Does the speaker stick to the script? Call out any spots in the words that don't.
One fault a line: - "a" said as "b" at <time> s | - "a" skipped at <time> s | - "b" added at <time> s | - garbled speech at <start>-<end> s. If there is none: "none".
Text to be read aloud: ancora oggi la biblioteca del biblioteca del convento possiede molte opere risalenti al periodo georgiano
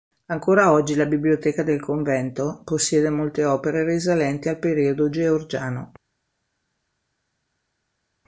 - "biblioteca del" skipped at 1.8 s